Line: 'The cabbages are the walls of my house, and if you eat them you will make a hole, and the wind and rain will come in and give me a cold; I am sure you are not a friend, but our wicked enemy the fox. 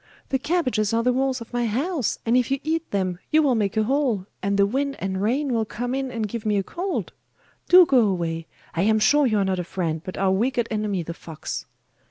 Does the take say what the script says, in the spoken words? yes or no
no